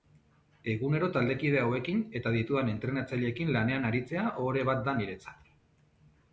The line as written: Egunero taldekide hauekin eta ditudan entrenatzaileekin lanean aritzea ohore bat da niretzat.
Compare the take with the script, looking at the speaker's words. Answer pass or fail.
pass